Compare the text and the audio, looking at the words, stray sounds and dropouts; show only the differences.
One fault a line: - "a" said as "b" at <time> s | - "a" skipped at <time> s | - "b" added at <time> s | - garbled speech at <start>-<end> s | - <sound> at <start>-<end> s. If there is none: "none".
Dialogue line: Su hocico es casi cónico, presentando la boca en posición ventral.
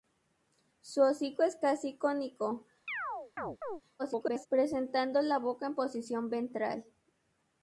- chirp at 2.9-3.8 s
- garbled speech at 4.0-4.5 s